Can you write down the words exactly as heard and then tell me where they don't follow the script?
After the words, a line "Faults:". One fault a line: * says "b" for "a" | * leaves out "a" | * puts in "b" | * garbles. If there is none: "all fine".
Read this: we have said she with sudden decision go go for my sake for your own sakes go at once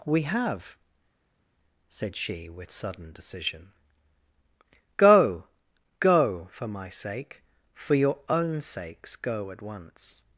we have said she with sudden decision go go for my sake for your own sakes go at once
Faults:
all fine